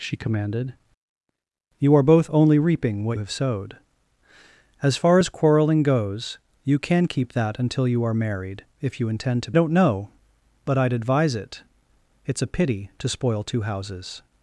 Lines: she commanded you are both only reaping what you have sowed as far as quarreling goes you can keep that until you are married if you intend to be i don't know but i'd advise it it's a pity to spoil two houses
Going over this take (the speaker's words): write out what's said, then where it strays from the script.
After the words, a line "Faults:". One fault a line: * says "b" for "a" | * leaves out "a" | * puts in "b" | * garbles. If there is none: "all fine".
she commanded you are both only reaping what have sowed as far as quarreling goes you can keep that until you are married if you intend to don't know but i'd advise it it's a pity to spoil two houses
Faults:
* leaves out "you"
* leaves out "be i"